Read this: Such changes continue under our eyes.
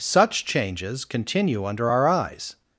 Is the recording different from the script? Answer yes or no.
no